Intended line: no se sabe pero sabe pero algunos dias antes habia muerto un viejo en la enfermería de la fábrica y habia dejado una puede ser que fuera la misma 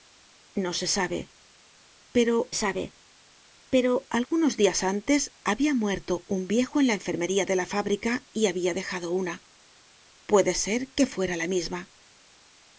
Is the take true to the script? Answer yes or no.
yes